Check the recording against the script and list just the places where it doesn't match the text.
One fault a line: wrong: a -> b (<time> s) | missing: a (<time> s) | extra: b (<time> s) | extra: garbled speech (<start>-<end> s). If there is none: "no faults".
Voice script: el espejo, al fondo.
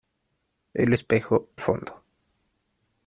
missing: al (1.5 s)